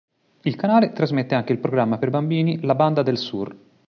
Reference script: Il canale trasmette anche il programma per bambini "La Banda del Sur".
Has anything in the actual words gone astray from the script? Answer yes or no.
no